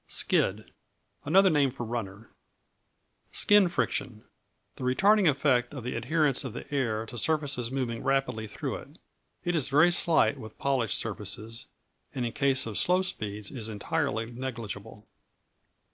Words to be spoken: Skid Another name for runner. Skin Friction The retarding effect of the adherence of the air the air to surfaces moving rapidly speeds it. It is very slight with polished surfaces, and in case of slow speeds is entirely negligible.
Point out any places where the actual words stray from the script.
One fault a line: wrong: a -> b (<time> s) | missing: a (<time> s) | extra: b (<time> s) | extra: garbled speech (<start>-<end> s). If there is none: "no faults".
missing: the air (7.0 s)
wrong: speeds -> through (8.5 s)